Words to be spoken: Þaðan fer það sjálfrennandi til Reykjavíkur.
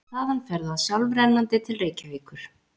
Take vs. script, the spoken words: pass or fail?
pass